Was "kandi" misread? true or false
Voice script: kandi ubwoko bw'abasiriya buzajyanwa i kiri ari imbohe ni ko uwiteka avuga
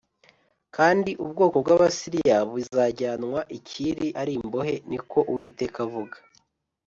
false